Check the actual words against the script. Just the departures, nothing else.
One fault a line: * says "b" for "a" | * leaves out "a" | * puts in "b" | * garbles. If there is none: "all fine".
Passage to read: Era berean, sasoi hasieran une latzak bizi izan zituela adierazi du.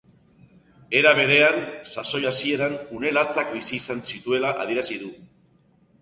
all fine